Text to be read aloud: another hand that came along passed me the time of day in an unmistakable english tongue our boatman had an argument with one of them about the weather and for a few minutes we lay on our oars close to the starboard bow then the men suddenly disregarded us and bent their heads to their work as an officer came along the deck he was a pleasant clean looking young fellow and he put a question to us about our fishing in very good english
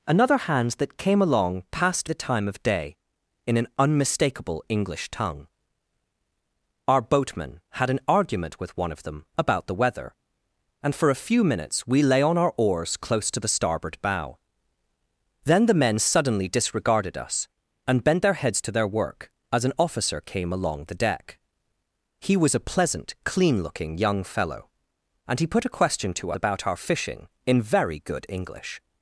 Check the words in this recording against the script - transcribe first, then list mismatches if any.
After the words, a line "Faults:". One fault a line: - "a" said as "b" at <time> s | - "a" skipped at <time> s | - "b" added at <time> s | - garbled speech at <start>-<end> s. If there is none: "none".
another hand that came along passed the time of day in an unmistakable english tongue our boatman had an argument with one of them about the weather and for a few minutes we lay on our oars close to the starboard bow then the men suddenly disregarded us and bent their heads to their work as an officer came along the deck he was a pleasant clean looking young fellow and he put a question to about our fishing in very good english
Faults:
- "me" skipped at 2.1 s
- "us" skipped at 26.3 s